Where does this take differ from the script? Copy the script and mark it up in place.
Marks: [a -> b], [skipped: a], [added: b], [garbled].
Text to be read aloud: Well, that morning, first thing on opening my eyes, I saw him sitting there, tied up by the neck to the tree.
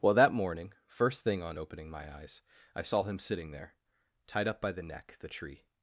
Well, that morning, first thing on opening my eyes, I saw him sitting there, tied up by the neck [skipped: to] the tree.